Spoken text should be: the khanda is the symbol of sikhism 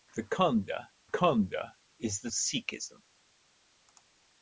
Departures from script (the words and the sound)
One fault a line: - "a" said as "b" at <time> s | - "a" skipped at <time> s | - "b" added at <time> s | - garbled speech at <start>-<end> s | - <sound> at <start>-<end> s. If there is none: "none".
- "khanda" added at 1.0 s
- "symbol of" skipped at 2.3 s